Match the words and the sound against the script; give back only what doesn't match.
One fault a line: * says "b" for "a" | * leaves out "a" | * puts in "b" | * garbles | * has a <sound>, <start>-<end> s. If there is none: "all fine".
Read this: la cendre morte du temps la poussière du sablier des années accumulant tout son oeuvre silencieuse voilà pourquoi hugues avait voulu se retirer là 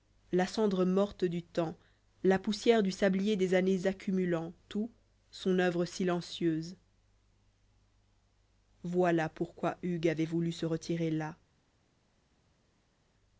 all fine